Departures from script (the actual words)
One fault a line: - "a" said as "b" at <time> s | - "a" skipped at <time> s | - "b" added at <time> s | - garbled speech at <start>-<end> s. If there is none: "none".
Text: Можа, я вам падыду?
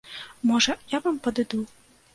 none